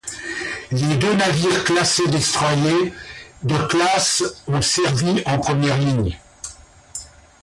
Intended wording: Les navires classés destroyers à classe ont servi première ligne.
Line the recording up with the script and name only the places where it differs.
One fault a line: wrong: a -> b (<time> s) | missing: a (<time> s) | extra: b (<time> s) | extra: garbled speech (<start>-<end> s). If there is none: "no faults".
extra: deux (1.0 s)
wrong: à -> de (3.4 s)
extra: en (5.3 s)